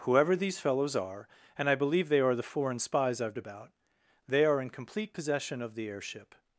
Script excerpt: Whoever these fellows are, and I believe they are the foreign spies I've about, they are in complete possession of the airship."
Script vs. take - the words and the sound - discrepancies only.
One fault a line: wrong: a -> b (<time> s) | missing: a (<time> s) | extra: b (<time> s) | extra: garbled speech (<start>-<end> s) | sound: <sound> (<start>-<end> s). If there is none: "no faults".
no faults